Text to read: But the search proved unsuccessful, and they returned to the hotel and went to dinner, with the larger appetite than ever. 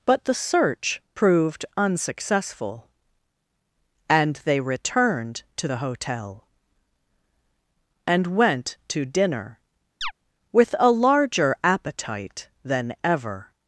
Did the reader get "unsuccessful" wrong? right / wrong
right